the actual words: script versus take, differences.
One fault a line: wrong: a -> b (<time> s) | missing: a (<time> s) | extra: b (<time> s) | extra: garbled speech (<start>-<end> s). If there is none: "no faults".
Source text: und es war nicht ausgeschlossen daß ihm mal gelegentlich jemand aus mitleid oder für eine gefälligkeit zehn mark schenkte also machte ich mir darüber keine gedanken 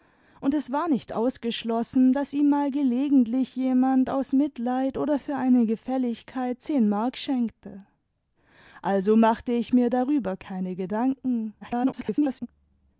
extra: garbled speech (11.6-12.5 s)